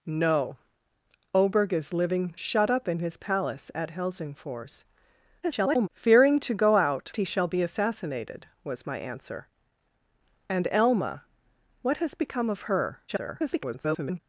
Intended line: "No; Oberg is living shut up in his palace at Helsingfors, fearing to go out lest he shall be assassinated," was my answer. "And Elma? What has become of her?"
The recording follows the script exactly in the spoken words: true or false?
false